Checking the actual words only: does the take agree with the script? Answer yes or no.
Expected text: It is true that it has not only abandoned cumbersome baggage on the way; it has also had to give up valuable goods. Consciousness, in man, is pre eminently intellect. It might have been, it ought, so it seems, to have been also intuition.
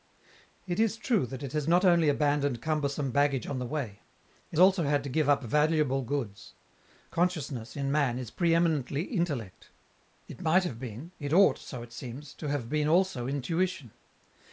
no